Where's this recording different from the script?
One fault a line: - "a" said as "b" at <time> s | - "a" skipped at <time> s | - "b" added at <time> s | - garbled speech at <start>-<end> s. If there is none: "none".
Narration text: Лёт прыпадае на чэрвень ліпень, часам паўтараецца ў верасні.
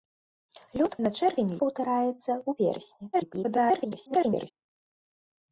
- "прыпадае" skipped at 0.9 s
- "ліпень часам" skipped at 1.6 s
- garbled speech at 3.1-4.5 s